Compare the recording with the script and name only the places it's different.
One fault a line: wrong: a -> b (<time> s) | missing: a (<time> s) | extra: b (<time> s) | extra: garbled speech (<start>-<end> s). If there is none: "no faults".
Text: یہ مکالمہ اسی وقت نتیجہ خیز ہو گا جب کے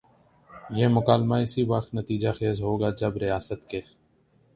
extra: ریاست (3.2 s)